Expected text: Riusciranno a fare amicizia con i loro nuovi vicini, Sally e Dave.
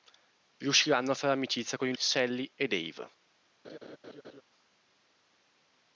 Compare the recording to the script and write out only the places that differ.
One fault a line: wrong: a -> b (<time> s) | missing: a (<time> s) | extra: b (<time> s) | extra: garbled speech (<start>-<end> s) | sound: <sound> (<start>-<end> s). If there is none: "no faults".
missing: loro nuovi vicini (1.9 s)
sound: laugh (3.6-4.4 s)